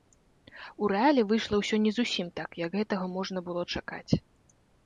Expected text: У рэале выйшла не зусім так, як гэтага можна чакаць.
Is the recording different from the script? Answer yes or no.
yes